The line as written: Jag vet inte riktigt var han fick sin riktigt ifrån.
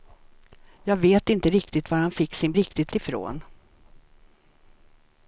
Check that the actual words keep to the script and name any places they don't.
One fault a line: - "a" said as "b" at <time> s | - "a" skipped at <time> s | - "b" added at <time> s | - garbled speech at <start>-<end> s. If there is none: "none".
none